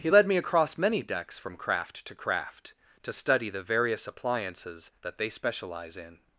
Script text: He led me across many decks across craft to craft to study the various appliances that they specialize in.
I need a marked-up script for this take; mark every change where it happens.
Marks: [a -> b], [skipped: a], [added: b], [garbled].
He led me across many decks [across -> from] craft to craft to study the various appliances that they specialize in.